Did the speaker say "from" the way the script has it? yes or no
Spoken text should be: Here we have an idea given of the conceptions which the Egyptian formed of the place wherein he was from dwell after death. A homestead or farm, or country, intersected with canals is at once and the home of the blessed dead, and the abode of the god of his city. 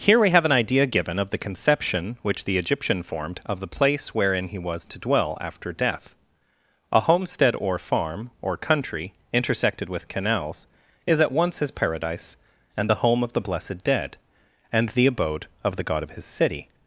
no